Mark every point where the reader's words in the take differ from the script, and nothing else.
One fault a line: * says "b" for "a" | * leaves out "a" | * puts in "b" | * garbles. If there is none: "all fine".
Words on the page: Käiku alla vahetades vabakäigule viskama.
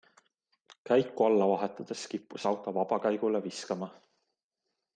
* puts in "kippus auto"